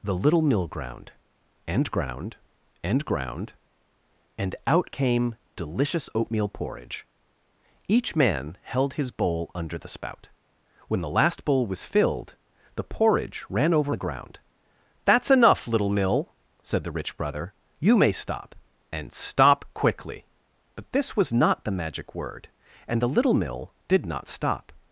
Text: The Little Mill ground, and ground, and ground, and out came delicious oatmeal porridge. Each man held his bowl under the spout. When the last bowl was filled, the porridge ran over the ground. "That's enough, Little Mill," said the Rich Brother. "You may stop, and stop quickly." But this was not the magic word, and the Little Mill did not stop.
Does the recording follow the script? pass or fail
pass